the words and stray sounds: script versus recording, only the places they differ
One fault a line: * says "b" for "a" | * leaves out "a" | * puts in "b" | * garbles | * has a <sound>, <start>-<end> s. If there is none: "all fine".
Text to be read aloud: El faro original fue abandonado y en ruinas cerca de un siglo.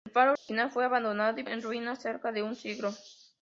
* has a dropout, 0.4-0.5 s